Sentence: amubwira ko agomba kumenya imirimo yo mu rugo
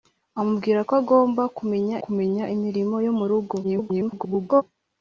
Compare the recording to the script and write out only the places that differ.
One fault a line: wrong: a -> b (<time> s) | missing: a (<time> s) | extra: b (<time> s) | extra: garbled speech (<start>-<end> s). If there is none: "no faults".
extra: kumenya (2.0 s)
extra: garbled speech (3.6-4.6 s)